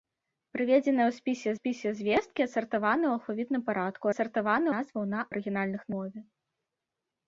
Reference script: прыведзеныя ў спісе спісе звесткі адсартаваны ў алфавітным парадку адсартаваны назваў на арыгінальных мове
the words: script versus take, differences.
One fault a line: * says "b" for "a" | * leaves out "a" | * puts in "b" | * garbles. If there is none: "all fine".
all fine